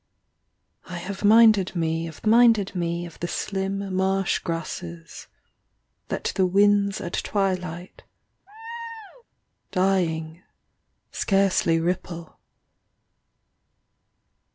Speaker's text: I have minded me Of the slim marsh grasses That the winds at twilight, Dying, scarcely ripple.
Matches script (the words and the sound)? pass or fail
fail